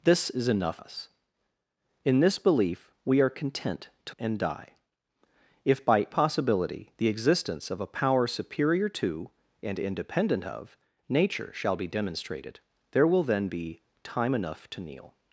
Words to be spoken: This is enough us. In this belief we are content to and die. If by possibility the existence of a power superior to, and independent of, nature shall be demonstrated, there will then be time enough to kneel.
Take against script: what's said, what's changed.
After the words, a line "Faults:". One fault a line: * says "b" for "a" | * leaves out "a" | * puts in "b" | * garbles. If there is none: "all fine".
This is enough us. In this belief we are content to and die. If by possibility the existence of a power superior to, and independent of, nature shall be demonstrated, there will then be time enough to kneel.
Faults:
all fine